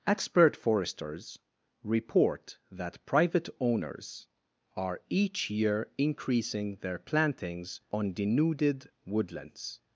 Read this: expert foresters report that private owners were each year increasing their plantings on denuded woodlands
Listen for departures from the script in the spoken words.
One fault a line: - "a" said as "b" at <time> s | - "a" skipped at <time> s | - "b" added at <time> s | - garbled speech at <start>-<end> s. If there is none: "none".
- "were" said as "are" at 4.8 s